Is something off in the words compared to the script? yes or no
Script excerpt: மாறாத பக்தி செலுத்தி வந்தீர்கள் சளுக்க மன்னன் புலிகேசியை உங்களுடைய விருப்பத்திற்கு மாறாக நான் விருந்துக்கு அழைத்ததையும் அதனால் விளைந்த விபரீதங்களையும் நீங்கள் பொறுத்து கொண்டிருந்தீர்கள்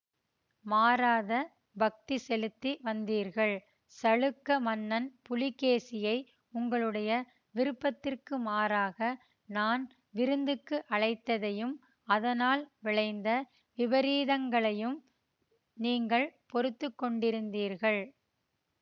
no